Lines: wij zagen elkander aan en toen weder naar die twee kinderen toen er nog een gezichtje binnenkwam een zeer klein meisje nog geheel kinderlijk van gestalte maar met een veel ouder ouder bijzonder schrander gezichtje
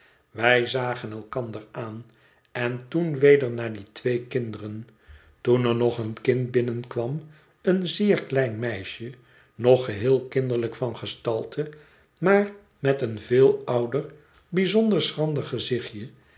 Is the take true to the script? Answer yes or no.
no